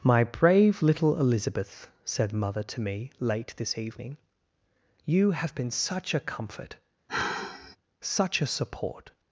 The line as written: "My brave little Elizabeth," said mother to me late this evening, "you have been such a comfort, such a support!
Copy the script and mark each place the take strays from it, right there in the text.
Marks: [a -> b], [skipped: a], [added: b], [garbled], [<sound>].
"My brave little Elizabeth," said mother to me late this evening, "you have been such a comfort, [sigh] such a support!